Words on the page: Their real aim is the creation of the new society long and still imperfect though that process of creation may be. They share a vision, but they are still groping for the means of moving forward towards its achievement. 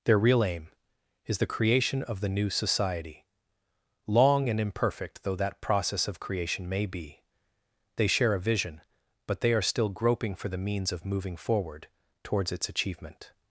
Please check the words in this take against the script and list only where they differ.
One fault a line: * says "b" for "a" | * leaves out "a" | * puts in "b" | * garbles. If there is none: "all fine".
* leaves out "still"